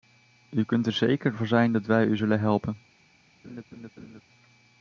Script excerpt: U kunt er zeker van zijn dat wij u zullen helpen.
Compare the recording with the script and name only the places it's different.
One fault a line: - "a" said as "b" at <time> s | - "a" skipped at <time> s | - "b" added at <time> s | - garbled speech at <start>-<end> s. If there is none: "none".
none